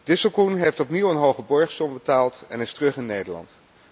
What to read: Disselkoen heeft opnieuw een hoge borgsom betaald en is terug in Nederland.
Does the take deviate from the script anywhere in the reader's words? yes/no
no